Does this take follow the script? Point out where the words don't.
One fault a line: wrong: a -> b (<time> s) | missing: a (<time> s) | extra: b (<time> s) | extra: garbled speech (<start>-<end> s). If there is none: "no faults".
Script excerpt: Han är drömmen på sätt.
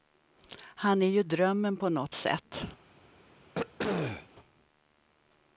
extra: ju (1.1 s)
extra: nåt (1.9 s)